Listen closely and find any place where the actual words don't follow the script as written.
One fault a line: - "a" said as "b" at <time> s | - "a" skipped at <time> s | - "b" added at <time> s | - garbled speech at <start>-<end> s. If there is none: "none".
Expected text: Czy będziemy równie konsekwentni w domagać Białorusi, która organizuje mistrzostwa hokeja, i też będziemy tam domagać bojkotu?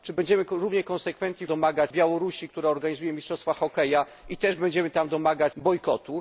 none